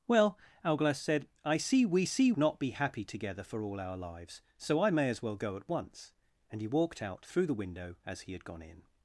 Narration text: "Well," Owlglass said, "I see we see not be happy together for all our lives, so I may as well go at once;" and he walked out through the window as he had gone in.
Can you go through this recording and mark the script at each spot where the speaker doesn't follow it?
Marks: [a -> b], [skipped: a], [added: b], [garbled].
"Well," Owlglass said, "I see we see not be happy together for all our lives, so I may as well go at once;" and he walked out through the window as he had gone in.